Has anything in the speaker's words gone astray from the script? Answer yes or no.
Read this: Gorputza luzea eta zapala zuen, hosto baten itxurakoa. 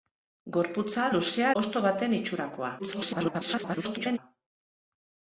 yes